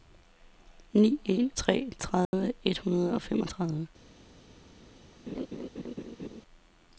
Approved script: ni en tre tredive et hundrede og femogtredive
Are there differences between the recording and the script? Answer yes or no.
no